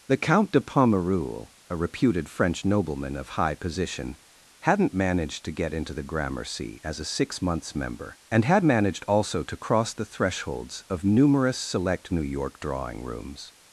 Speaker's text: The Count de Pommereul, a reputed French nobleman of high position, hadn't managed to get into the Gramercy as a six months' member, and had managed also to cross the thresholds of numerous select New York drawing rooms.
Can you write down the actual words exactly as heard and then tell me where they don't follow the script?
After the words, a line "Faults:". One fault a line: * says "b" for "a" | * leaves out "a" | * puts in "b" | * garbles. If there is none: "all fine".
The Count de Pommereul, a reputed French nobleman of high position, hadn't managed to get into the Gramercy as a six months' member, and had managed also to cross the thresholds of numerous select New York drawing rooms.
Faults:
all fine